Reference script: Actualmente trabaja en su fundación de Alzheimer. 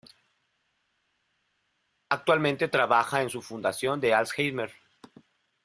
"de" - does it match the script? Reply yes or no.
yes